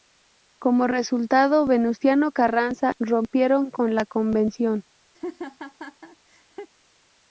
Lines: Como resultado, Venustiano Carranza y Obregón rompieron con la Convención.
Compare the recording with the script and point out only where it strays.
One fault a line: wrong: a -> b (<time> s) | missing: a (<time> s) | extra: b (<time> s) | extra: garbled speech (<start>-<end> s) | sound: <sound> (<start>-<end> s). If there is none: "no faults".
missing: y Obregón (2.9 s)
sound: laugh (5.1-6.7 s)